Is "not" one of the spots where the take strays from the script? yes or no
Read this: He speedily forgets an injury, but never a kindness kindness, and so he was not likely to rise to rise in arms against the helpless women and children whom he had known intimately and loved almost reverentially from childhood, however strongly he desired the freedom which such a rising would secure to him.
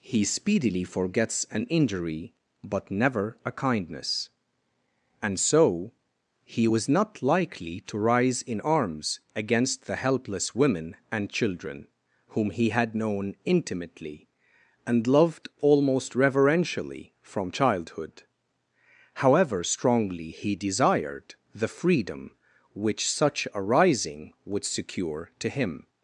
no